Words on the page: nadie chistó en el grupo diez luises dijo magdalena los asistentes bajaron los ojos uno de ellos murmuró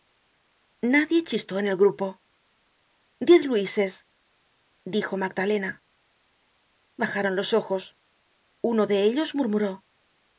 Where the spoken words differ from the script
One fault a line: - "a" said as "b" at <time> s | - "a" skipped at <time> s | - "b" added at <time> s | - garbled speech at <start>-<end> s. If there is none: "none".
- "los asistentes" skipped at 5.8 s